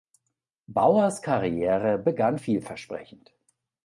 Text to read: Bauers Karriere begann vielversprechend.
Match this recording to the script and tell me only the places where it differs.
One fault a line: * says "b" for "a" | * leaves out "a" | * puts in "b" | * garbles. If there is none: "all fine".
all fine